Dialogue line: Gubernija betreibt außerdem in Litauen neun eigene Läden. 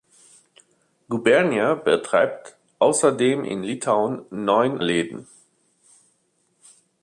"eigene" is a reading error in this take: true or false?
true